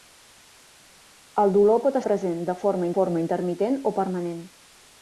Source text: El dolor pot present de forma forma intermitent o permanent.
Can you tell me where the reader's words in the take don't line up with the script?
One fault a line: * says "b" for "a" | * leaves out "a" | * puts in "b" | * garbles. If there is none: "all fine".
all fine